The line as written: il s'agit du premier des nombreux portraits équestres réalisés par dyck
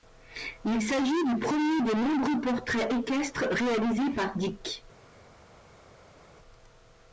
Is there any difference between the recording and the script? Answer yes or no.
no